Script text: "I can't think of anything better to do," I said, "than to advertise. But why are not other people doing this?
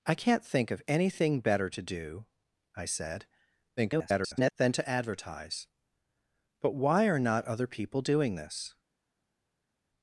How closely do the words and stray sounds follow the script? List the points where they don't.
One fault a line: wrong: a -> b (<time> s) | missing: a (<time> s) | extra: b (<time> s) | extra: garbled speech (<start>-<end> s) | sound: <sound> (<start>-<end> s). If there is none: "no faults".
extra: garbled speech (3.8-4.5 s)